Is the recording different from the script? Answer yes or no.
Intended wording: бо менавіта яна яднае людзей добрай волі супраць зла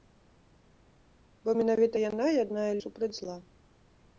yes